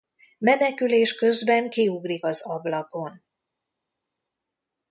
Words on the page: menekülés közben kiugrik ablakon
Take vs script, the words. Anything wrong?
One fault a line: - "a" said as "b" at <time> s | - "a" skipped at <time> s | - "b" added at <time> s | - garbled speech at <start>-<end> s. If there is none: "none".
- "az" added at 2.2 s